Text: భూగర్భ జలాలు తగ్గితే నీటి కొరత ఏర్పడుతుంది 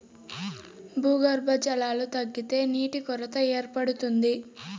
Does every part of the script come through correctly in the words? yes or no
yes